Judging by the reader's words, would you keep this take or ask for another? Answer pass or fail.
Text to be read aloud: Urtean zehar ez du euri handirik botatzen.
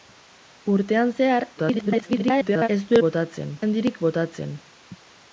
fail